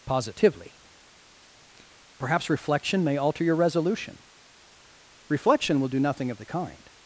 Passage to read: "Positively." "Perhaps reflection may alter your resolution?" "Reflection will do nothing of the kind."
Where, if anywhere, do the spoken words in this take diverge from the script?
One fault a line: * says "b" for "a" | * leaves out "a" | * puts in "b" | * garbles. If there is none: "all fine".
all fine